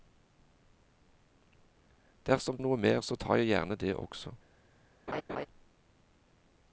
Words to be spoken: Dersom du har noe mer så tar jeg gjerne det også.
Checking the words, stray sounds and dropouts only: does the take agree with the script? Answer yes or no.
no